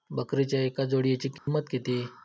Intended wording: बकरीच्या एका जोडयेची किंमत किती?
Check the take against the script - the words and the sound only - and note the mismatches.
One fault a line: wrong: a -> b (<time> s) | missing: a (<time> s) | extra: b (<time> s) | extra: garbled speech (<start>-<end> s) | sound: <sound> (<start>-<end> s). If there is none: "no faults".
sound: dropout (1.4-1.5 s)